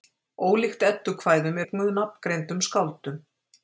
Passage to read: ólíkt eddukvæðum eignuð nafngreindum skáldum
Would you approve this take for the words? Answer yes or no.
yes